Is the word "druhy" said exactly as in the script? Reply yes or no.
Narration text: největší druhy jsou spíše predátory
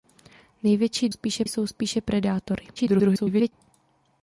no